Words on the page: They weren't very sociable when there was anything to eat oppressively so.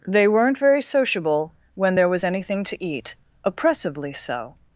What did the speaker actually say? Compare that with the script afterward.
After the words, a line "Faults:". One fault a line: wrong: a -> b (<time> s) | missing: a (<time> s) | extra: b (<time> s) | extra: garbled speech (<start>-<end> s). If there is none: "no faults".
They weren't very sociable when there was anything to eat oppressively so.
Faults:
no faults